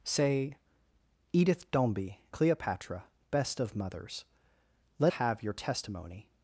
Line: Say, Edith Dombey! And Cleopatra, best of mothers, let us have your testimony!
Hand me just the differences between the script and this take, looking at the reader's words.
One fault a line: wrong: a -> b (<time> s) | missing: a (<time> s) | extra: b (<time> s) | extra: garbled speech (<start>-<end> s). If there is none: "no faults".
missing: And (2.2 s)
missing: us (5.1 s)